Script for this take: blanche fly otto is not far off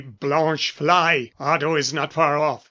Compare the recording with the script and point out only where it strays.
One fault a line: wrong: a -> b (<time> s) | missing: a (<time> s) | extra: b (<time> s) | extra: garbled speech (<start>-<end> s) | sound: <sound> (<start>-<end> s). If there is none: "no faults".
no faults